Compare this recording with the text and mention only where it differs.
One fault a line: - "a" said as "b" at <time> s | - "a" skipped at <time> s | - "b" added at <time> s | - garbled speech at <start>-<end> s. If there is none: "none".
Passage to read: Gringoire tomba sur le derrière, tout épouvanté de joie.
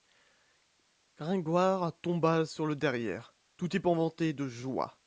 none